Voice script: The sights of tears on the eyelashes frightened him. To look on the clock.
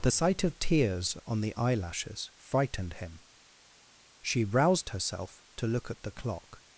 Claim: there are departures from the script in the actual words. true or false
true